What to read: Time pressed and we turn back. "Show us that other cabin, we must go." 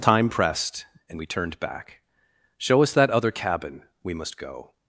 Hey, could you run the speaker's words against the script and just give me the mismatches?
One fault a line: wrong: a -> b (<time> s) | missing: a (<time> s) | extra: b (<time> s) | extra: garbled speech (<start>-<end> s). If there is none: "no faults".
wrong: turn -> turned (1.3 s)